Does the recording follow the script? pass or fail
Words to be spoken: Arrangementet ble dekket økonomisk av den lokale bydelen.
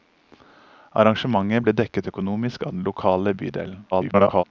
fail